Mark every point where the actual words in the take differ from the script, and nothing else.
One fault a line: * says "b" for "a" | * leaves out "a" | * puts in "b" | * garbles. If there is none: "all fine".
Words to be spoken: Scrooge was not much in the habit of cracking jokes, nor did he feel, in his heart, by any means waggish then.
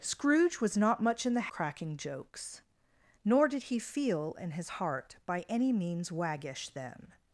* leaves out "habit of"